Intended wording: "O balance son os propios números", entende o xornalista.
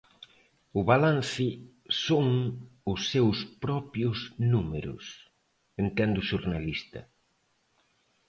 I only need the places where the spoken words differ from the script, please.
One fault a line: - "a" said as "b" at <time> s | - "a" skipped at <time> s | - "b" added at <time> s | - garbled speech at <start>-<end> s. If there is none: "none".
- "seus" added at 3.1 s